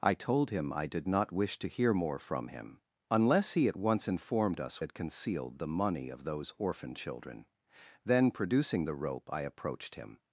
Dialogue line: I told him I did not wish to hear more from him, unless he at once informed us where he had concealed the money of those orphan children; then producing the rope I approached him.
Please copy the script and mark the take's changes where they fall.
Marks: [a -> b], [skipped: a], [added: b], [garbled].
I told him I did not wish to hear more from him, unless he at once informed us [skipped: where he] had concealed the money of those orphan children; then producing the rope I approached him.